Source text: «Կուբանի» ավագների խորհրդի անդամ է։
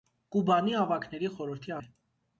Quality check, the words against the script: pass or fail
fail